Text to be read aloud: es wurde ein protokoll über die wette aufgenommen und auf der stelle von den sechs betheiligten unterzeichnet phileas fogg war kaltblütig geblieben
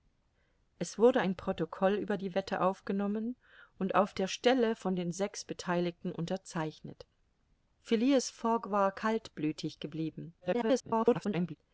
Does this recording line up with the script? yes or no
no